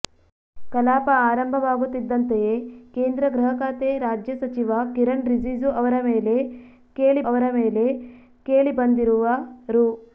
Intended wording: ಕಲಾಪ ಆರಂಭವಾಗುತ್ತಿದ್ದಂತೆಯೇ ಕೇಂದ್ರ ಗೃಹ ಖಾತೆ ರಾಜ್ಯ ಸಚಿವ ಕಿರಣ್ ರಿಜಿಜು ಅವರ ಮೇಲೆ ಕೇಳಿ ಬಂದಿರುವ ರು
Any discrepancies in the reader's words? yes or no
yes